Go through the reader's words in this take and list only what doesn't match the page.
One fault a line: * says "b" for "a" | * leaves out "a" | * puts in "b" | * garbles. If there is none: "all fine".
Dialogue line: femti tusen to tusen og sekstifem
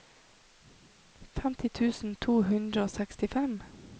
* says "hundre" for "tusen"